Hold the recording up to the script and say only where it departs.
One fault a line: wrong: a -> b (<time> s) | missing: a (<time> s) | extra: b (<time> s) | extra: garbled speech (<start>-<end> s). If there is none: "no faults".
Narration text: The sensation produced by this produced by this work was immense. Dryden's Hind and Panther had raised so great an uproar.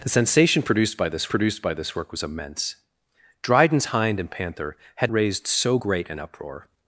no faults